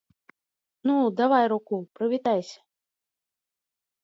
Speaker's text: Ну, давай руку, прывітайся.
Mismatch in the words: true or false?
false